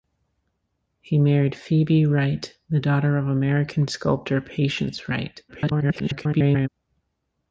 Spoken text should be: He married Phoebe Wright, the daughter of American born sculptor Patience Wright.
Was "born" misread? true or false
true